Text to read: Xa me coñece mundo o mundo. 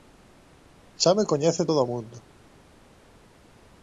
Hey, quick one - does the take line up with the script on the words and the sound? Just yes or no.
no